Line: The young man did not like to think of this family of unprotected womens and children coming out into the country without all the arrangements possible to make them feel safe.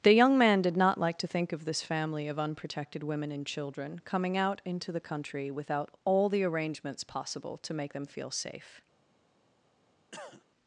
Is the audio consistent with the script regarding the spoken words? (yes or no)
no